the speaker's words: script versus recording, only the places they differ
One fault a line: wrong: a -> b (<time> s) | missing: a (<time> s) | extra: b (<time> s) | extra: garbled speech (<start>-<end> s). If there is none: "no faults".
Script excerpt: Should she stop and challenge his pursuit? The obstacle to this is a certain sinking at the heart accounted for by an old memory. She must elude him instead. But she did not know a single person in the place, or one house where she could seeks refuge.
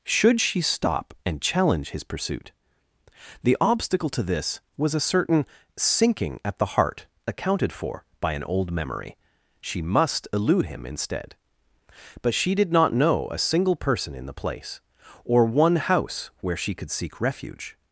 wrong: is -> was (4.8 s)
wrong: seeks -> seek (16.9 s)